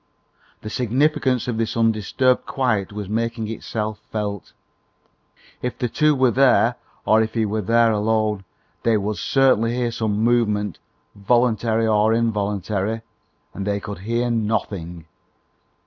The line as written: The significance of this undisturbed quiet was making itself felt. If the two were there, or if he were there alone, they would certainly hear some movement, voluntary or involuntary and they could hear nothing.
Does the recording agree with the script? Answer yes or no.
yes